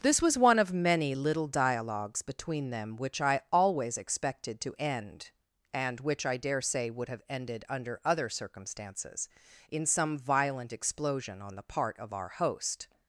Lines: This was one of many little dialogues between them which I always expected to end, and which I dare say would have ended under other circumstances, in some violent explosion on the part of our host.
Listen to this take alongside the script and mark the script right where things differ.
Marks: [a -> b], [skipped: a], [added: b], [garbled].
This was one of many little dialogues between them which I always expected to end, and which I dare say would have ended under other circumstances, in some violent explosion on the part of our host.